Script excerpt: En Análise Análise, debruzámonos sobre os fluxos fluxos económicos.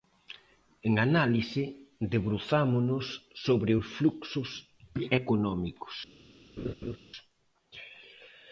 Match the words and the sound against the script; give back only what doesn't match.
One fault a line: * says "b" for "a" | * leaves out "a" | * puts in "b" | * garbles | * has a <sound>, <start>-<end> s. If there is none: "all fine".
* leaves out "Análise"
* leaves out "fluxos"
* has a laugh, 6.6-7.0 s